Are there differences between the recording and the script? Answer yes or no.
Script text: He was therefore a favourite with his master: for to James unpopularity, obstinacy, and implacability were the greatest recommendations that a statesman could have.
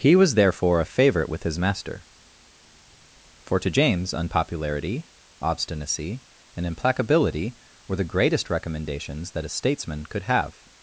no